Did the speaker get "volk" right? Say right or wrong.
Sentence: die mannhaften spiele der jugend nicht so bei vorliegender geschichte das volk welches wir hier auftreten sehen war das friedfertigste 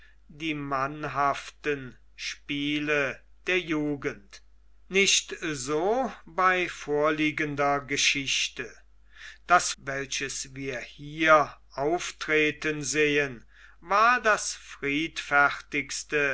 wrong